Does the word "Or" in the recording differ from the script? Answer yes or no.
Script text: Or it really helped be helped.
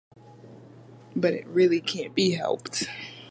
yes